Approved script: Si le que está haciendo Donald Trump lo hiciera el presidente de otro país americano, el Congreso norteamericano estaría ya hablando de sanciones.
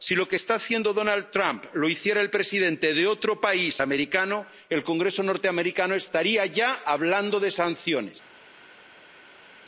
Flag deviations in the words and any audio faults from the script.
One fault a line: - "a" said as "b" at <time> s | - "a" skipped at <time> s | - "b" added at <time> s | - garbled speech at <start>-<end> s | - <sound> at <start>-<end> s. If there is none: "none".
- "le" said as "lo" at 0.1 s